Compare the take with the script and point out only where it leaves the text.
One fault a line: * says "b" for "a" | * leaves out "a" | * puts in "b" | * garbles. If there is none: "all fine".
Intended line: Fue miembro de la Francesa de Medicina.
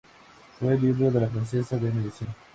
all fine